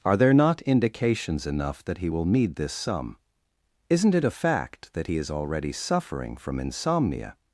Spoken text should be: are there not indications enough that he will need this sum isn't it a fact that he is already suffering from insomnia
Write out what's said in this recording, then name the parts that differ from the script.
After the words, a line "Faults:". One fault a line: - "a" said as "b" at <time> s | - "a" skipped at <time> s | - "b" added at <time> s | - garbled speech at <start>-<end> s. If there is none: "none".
are there not indications enough that he will need this sum isn't it a fact that he is already suffering from insomnia
Faults:
none